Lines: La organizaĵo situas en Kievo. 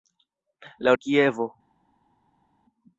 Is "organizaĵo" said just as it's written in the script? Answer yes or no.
no